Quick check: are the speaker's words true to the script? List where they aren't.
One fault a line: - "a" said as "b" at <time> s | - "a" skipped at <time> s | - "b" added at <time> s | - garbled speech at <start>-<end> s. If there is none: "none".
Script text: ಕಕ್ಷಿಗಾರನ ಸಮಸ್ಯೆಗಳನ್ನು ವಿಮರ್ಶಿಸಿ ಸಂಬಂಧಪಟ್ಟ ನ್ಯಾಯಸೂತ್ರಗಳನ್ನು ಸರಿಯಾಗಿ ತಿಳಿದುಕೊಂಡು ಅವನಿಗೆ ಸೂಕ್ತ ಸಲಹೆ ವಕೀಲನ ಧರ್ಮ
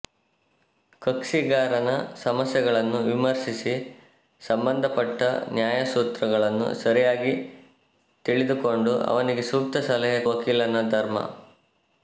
none